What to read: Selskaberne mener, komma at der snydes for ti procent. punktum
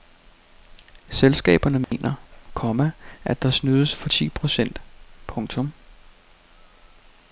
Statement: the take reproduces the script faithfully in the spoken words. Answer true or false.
true